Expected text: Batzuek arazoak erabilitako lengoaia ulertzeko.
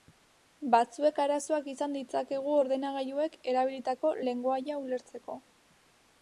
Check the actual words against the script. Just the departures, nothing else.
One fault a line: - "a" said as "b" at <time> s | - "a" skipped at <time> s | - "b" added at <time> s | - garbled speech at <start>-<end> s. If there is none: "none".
- "izan ditzakegu ordenagailuek" added at 1.7 s